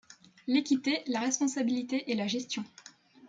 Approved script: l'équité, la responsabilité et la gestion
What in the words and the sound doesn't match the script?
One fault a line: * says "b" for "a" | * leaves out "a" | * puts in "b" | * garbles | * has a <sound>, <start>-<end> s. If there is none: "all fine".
all fine